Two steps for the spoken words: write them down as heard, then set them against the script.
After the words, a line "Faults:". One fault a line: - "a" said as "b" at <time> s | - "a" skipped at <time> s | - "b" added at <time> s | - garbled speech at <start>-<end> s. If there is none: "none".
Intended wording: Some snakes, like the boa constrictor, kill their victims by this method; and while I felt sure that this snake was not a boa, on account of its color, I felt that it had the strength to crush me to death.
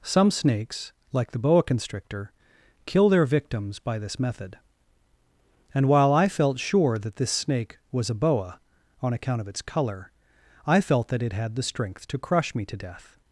Some snakes, like the boa constrictor, kill their victims by this method; and while I felt sure that this snake was a boa, on account of its color, I felt that it had the strength to crush me to death.
Faults:
- "not" skipped at 8.1 s